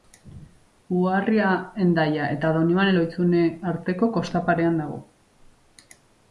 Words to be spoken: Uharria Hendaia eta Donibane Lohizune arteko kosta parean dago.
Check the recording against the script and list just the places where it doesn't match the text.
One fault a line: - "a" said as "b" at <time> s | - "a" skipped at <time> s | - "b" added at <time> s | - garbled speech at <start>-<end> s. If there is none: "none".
none